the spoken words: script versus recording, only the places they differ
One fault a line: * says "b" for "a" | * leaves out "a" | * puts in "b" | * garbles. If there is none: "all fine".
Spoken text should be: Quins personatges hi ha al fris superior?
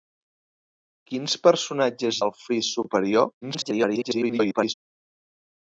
* leaves out "hi"
* garbles